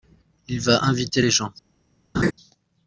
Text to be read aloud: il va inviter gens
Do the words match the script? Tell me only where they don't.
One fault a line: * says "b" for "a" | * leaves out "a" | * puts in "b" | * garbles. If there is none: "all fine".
* puts in "les"